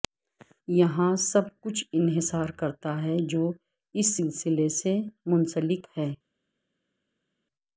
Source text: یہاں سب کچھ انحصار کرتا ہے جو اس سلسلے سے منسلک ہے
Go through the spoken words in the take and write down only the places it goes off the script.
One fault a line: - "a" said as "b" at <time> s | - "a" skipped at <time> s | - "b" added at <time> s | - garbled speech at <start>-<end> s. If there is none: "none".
none